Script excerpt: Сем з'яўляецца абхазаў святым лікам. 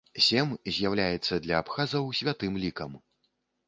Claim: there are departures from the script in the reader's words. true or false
true